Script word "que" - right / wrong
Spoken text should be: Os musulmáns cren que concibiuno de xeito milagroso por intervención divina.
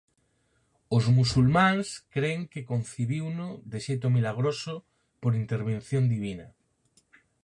right